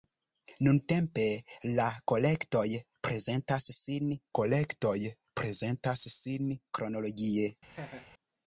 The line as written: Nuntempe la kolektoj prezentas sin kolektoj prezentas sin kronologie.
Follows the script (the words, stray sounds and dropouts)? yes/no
no